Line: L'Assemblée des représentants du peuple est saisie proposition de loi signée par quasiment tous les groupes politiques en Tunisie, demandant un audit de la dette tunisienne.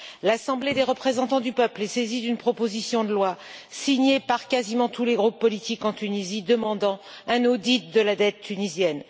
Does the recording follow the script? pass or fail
fail